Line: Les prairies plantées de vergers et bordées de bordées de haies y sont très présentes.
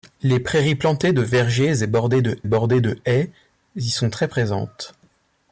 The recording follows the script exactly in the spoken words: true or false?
true